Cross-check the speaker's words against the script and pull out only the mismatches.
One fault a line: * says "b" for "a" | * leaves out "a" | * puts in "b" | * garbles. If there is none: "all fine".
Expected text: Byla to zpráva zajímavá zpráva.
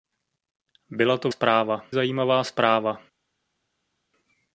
all fine